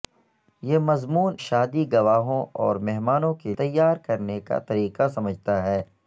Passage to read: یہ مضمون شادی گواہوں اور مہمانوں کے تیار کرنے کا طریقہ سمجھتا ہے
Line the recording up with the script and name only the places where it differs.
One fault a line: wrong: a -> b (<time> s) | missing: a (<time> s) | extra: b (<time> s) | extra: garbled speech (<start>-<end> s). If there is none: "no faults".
no faults